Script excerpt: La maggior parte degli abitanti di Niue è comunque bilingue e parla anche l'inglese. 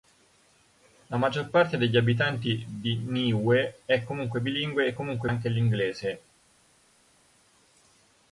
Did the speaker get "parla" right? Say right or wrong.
wrong